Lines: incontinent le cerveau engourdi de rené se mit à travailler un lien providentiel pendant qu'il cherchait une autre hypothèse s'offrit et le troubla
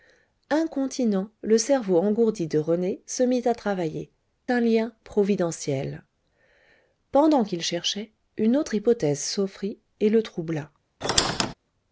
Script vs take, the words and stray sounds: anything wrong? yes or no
yes